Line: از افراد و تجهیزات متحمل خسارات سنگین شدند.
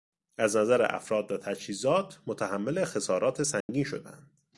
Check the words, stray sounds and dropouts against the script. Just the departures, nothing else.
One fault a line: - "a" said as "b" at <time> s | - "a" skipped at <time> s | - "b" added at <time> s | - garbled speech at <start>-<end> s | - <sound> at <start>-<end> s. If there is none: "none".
- "نظر" added at 0.6 s
- dropout at 3.6-3.7 s